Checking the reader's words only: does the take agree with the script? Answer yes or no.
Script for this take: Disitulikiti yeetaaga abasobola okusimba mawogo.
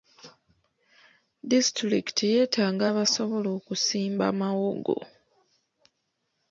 yes